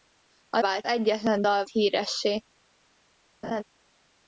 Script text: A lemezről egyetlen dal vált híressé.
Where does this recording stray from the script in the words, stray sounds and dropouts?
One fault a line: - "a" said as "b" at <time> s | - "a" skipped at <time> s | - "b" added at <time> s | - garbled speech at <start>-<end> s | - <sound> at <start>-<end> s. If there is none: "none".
- "lemezről" said as "vált" at 0.6 s
- "vált" skipped at 1.6 s
- laugh at 3.4-3.6 s